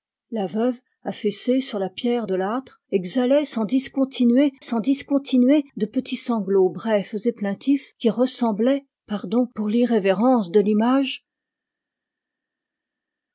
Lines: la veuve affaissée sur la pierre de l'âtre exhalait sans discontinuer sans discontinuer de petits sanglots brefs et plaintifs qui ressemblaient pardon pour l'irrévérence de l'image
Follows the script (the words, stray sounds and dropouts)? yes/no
yes